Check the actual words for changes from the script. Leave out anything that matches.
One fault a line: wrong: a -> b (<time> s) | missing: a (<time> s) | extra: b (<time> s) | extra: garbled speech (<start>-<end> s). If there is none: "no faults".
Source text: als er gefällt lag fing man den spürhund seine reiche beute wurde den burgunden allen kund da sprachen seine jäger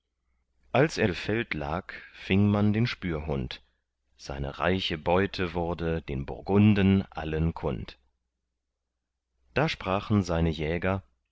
no faults